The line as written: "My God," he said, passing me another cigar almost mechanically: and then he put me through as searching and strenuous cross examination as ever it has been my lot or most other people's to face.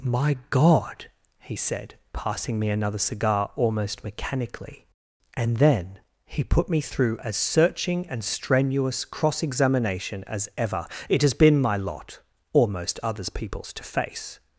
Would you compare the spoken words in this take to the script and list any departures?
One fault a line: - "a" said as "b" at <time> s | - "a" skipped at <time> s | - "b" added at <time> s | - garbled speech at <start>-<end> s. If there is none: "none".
- "other" said as "others" at 13.0 s